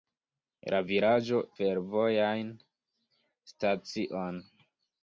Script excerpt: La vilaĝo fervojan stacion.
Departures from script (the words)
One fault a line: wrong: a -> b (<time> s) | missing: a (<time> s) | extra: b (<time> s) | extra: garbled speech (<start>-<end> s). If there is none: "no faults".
no faults